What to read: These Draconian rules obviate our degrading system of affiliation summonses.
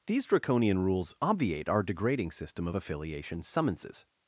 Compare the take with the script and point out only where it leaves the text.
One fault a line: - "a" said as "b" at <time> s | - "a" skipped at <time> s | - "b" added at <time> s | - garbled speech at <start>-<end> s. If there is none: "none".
none